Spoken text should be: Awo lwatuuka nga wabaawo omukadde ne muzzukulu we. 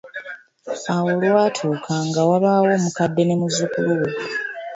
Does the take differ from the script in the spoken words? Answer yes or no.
no